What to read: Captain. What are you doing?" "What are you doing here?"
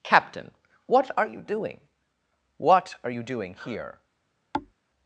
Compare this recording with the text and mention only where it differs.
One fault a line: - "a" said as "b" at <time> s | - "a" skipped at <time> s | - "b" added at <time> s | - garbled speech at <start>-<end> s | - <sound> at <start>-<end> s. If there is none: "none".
- thud at 4.5-4.7 s